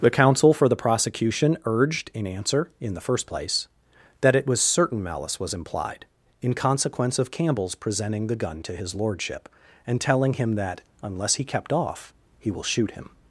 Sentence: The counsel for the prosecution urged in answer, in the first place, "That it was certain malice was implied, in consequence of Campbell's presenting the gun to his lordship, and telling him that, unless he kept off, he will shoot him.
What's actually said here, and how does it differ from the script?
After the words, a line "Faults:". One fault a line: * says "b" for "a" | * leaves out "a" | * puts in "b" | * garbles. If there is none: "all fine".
The counsel for the prosecution urged in answer, in the first place, "That it was certain malice was implied, in consequence of Campbell's presenting the gun to his lordship, and telling him that, unless he kept off, he will shoot him.
Faults:
all fine